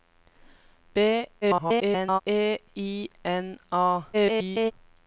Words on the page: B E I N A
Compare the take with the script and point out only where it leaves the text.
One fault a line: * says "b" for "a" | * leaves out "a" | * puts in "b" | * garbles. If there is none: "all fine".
* garbles
* garbles